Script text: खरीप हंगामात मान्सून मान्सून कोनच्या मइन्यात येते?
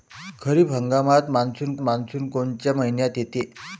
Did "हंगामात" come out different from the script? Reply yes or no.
no